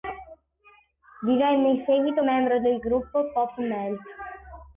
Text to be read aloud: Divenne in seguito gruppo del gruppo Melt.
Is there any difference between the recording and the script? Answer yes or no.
yes